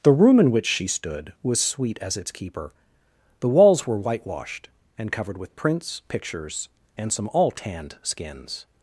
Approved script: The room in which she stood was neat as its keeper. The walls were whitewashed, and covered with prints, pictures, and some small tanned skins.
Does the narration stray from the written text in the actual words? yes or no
yes